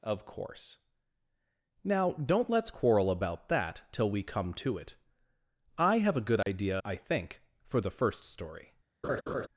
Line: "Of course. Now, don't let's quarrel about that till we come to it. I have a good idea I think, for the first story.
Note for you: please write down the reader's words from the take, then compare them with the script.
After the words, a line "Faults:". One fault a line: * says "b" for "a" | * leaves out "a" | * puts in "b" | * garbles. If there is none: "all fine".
"Of course. Now, don't let's quarrel about that till we come to it. I have a good idea I think, for the first story.
Faults:
all fine